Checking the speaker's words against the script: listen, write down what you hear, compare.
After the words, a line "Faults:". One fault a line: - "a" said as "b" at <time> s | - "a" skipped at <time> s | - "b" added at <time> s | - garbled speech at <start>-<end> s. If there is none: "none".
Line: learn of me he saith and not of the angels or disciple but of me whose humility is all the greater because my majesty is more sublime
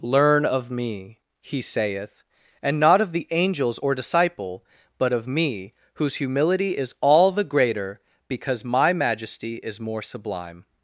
learn of me he saith and not of the angels or disciple but of me whose humility is all the greater because my majesty is more sublime
Faults:
none